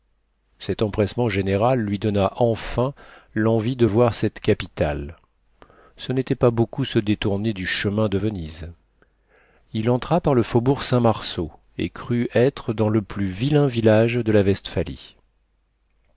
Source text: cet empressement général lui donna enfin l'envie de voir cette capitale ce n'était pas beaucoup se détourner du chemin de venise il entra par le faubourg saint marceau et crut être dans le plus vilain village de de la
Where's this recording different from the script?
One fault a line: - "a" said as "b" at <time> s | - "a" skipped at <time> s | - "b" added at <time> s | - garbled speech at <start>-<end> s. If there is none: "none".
- "de" skipped at 14.3 s